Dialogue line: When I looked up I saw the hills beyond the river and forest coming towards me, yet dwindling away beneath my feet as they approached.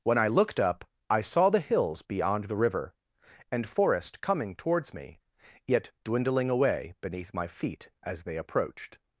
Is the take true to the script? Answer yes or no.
yes